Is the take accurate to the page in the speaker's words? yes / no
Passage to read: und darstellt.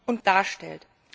yes